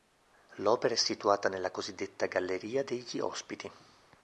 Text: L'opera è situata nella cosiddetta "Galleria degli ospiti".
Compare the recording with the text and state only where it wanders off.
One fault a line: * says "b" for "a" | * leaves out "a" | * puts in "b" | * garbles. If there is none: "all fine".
all fine